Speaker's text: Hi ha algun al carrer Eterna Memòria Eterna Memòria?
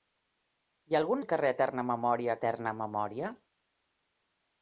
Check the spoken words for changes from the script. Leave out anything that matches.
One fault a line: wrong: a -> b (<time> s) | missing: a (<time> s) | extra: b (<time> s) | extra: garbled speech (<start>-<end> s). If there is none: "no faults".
no faults